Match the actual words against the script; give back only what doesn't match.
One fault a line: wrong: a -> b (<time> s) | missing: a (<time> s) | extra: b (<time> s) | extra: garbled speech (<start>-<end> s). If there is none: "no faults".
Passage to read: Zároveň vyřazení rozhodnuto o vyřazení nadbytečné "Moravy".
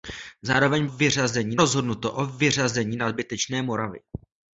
no faults